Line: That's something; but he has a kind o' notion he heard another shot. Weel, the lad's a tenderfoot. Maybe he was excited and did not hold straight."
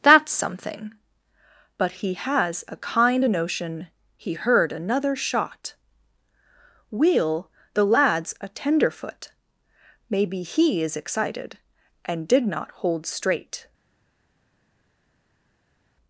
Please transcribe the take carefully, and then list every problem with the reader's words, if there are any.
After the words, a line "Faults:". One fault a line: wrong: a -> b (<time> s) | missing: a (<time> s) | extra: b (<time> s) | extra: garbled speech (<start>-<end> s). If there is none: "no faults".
That's something; but he has a kind o' notion he heard another shot. Weel, the lad's a tenderfoot. Maybe he is excited and did not hold straight."
Faults:
wrong: was -> is (10.8 s)